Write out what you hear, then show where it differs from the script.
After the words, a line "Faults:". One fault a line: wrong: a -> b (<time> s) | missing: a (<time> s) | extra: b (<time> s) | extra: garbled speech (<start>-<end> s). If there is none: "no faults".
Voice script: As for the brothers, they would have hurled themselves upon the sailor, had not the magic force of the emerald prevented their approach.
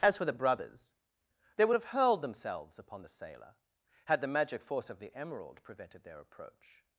As for the brothers, they would have hurled themselves upon the sailor, had the magic force of the emerald prevented their approach.
Faults:
missing: not (4.2 s)